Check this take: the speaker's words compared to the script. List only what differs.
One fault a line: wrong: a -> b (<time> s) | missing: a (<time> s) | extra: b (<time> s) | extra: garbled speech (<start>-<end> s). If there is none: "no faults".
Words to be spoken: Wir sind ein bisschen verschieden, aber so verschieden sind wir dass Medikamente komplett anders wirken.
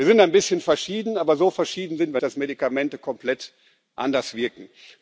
no faults